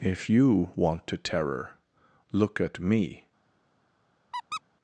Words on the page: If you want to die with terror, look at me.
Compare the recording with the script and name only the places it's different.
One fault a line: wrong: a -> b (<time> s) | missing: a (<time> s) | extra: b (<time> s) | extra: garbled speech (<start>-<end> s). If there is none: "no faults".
missing: die with (1.2 s)